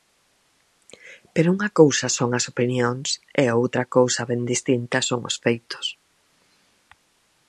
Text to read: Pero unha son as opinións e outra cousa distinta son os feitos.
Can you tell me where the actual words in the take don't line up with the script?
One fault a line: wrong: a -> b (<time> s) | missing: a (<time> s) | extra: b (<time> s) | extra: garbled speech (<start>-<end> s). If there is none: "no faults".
extra: cousa (1.8 s)
extra: ben (4.3 s)